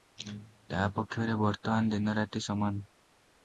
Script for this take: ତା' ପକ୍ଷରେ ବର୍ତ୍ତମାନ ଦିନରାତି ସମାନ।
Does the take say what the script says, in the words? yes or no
yes